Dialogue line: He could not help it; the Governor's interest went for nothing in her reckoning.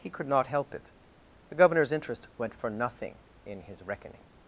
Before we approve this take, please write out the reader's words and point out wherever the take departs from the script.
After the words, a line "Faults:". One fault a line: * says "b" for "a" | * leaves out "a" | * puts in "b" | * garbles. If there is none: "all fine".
He could not help it; the Governor's interest went for nothing in his reckoning.
Faults:
* says "his" for "her"